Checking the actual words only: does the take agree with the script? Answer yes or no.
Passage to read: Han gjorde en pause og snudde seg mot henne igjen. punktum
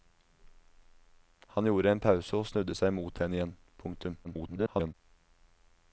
no